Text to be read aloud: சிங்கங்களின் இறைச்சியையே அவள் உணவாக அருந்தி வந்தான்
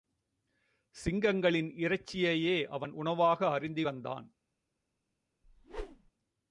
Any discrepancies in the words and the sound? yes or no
yes